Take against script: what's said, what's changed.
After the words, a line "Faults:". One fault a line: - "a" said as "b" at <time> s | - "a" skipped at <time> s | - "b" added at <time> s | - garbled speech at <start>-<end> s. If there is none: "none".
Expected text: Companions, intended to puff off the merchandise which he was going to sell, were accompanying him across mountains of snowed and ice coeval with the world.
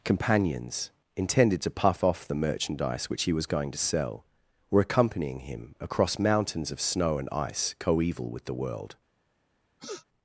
Companions, intended to puff off the merchandise which he was going to sell, were accompanying him across mountains of snow and ice coeval with the world.
Faults:
- "snowed" said as "snow" at 6.8 s